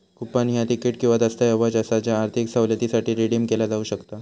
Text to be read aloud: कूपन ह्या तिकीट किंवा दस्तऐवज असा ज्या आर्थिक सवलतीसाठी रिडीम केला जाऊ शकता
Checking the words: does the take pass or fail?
pass